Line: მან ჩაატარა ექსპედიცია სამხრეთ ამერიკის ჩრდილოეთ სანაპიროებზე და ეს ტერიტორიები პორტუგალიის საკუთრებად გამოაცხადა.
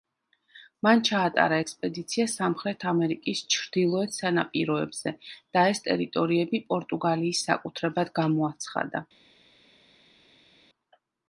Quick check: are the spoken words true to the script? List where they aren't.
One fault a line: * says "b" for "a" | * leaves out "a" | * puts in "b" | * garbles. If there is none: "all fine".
all fine